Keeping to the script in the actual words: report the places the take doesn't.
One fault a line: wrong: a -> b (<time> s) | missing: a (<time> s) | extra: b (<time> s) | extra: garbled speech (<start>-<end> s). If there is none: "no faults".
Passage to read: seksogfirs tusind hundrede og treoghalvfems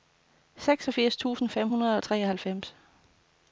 extra: fem (1.5 s)